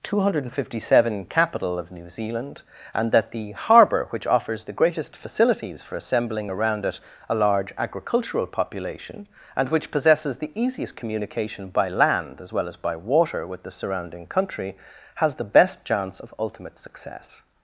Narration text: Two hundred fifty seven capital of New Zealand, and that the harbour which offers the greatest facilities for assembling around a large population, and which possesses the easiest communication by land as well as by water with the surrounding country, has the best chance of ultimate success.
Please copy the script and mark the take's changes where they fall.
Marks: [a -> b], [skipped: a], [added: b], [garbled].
Two hundred fifty seven capital of New Zealand, and that the harbour which offers the greatest facilities for assembling around [added: it] a large [added: agricultural] population, and which possesses the easiest communication by land as well as by water with the surrounding country, has the best chance of ultimate success.